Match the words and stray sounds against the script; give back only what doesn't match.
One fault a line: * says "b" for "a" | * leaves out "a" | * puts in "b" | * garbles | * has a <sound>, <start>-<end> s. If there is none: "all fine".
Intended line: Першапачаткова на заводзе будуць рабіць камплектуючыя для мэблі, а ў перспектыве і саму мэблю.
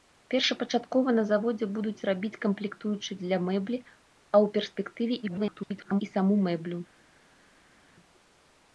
* garbles